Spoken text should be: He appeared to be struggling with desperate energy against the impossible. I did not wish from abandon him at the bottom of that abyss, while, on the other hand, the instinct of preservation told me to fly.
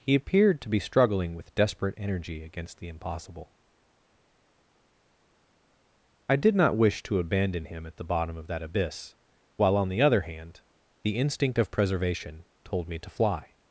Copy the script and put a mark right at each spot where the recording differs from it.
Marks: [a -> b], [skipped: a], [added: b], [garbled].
He appeared to be struggling with desperate energy against the impossible. I did not wish [from -> to] abandon him at the bottom of that abyss, while, on the other hand, the instinct of preservation told me to fly.